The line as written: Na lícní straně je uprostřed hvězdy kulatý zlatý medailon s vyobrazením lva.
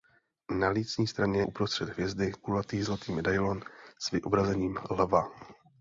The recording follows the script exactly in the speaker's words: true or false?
false